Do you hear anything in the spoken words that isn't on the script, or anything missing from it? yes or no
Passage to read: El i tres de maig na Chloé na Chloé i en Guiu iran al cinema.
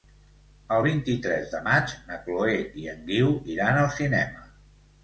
yes